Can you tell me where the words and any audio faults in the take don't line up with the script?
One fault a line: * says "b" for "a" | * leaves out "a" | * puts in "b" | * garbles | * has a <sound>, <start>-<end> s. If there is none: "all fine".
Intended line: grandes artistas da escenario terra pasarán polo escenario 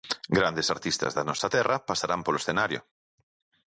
* says "nosa" for "escenario"